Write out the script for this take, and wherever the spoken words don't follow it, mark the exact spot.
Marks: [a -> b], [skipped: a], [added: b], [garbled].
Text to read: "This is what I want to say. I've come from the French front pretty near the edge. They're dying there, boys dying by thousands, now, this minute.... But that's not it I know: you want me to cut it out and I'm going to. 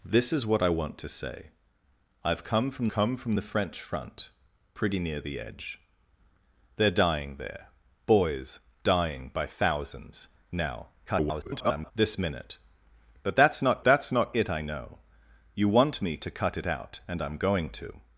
"This is what I want to say. I've come from [added: come from] the French front pretty near the edge. They're dying there, boys dying by thousands, now, [garbled] this minute.... But that's not [added: that's not] it I know: you want me to cut it out and I'm going to.